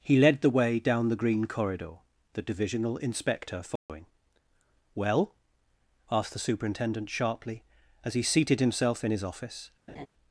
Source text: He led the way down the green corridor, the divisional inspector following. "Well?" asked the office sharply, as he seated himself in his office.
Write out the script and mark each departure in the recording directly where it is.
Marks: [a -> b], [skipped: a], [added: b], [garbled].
He led the way down the green corridor, the divisional inspector following. "Well?" asked the [office -> superintendent] sharply, as he seated himself in his office.